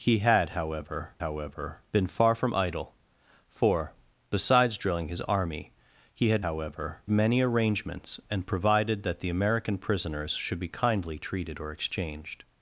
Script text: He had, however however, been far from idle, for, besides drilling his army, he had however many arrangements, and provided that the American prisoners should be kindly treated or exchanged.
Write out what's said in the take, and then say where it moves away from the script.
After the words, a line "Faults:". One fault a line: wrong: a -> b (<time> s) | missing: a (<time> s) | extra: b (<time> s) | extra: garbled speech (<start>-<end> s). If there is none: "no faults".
He had, however however, been far from idle, for, besides drilling his army, he had however many arrangements, and provided that the American prisoners should be kindly treated or exchanged.
Faults:
no faults